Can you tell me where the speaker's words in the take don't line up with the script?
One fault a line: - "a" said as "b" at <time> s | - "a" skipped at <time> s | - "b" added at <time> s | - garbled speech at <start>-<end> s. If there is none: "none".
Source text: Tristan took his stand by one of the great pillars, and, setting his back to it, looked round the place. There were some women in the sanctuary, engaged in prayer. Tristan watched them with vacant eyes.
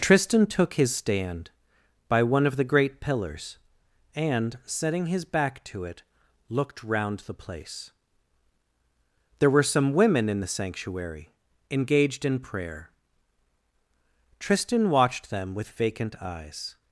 none